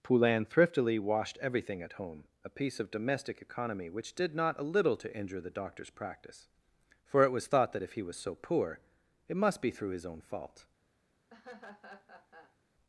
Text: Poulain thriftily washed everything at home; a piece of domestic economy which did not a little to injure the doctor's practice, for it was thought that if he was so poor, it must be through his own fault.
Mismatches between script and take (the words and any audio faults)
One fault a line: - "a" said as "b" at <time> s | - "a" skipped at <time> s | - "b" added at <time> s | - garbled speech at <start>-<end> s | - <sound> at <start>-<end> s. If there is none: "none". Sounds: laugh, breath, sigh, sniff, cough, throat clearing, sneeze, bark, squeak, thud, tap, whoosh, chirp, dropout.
- laugh at 11.3-12.6 s